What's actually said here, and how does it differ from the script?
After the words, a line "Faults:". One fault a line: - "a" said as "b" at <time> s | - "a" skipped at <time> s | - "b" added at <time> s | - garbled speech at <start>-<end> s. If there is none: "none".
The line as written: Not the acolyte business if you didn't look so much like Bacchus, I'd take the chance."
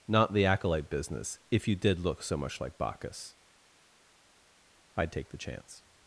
Not the acolyte business if you did look so much like Bacchus, I'd take the chance."
Faults:
- "didn't" said as "did" at 1.8 s